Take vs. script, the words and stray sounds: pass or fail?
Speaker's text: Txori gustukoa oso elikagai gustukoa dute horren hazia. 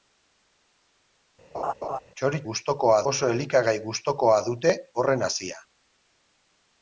fail